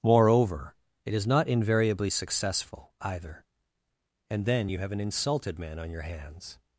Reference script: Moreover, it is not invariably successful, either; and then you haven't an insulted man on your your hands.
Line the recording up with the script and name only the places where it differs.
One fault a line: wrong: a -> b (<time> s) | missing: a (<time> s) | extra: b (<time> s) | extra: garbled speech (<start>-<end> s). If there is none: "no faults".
wrong: haven't -> have (4.8 s)
missing: your (6.0 s)